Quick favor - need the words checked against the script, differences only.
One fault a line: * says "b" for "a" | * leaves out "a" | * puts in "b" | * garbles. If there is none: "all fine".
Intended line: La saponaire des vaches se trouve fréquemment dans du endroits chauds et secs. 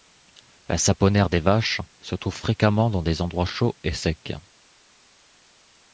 * says "des" for "du"